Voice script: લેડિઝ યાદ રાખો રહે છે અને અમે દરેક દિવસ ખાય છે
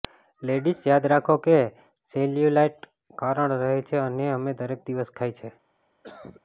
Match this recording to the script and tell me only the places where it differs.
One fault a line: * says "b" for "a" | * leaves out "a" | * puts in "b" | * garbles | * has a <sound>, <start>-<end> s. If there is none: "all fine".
* puts in "કે સેલ્યુલાઇટ કારણ"
* has a cough, 6.0-6.4 s